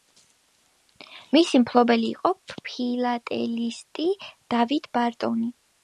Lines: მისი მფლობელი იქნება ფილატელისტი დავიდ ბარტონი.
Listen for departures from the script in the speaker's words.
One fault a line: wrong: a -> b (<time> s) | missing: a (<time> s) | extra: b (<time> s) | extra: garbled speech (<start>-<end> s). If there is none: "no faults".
wrong: იქნება -> იყო (2.1 s)